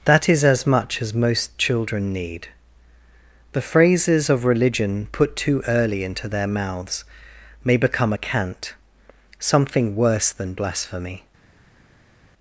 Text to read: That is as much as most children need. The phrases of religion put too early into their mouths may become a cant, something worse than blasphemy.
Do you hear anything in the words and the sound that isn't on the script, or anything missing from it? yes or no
no